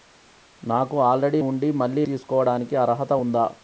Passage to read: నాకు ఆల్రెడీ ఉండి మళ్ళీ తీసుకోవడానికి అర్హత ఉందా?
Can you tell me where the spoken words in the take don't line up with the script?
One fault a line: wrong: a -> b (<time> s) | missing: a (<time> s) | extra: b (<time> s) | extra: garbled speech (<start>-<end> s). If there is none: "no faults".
no faults